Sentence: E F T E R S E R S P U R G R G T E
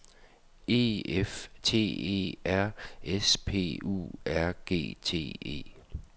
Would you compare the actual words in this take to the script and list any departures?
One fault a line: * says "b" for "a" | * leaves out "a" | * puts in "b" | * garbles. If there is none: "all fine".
* leaves out "E R S"
* leaves out "R G"